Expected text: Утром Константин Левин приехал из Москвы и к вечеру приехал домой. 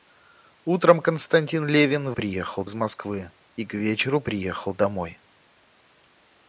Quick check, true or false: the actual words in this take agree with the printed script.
true